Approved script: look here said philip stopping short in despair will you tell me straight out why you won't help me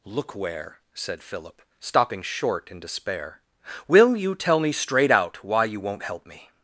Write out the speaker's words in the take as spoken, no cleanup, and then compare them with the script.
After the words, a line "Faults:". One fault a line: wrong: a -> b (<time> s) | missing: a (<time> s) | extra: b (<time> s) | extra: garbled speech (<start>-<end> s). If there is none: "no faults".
look where said philip stopping short in despair will you tell me straight out why you won't help me
Faults:
wrong: here -> where (0.3 s)